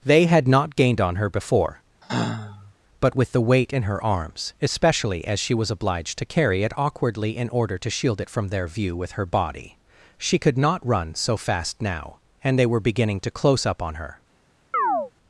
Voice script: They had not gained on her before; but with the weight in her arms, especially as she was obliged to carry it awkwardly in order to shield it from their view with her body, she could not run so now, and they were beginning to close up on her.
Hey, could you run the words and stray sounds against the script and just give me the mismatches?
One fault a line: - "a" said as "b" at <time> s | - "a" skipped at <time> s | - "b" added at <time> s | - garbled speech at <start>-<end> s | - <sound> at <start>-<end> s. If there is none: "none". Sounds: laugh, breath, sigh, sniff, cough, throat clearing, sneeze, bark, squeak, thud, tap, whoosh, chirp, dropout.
- sigh at 2.0-2.7 s
- "fast" added at 11.4 s
- chirp at 14.7-15.1 s